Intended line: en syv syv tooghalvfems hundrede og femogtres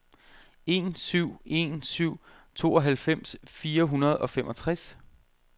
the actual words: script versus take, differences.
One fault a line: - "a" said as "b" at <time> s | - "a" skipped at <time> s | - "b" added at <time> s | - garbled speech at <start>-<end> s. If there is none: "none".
- "en" added at 1.4 s
- "fire" added at 3.4 s